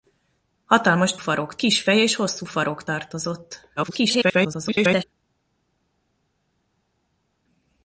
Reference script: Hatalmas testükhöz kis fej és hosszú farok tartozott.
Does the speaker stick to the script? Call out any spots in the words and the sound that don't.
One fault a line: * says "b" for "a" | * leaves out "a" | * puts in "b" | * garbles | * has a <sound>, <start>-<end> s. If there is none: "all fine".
* says "farok" for "testükhöz"
* garbles